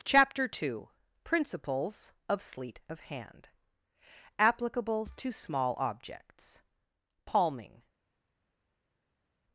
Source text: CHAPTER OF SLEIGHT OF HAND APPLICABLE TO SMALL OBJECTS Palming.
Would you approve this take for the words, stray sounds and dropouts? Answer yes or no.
no